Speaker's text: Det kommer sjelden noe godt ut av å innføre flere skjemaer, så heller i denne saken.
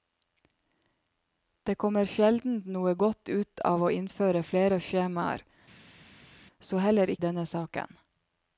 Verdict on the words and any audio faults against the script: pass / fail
pass